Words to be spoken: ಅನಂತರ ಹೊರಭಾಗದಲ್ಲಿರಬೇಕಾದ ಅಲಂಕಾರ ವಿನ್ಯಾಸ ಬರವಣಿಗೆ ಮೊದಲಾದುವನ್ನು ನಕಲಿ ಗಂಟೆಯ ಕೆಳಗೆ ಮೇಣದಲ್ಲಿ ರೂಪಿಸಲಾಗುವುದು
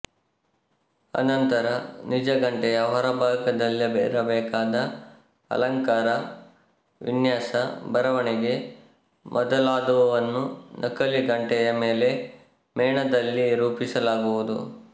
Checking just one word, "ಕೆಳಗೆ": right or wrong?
wrong